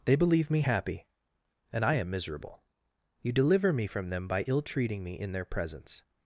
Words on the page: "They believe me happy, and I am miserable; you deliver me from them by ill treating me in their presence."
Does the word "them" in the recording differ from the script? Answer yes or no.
no